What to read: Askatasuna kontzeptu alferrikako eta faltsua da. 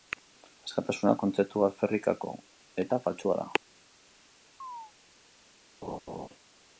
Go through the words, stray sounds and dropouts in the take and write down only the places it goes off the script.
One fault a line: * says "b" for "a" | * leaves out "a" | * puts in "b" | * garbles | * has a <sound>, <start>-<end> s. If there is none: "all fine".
* has a chirp, 4.6-4.9 s
* has a laugh, 5.8-6.3 s